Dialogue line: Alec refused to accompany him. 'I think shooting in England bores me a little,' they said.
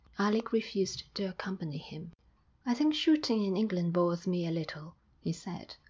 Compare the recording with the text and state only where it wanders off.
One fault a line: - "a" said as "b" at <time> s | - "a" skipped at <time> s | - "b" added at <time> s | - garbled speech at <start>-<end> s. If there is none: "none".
- "they" said as "he" at 5.2 s